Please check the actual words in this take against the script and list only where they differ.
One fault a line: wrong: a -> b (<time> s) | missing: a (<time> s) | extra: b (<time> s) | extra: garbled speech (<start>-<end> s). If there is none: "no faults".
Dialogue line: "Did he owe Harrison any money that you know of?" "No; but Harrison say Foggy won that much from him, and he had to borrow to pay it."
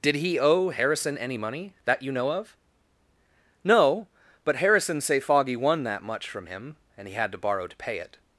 no faults